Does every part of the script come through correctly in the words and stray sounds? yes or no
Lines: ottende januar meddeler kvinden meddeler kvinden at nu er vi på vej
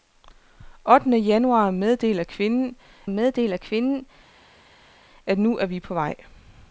yes